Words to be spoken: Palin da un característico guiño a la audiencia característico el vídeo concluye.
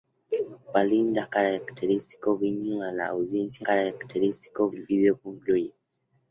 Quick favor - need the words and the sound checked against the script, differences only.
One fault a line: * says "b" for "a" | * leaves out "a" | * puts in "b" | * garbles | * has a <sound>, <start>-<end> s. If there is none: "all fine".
all fine